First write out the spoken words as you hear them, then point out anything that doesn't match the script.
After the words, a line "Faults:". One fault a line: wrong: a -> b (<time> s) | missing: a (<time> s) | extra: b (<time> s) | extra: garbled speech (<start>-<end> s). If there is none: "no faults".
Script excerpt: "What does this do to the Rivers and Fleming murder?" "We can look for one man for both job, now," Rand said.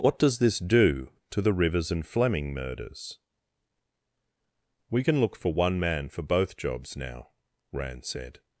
"What does this do to the Rivers and Fleming murders?" "We can look for one man for both jobs, now," Rand said.
Faults:
wrong: murder -> murders (2.5 s)
wrong: job -> jobs (6.6 s)